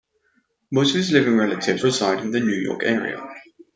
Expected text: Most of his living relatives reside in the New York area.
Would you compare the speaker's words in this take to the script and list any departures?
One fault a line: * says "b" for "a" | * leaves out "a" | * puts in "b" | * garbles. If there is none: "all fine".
all fine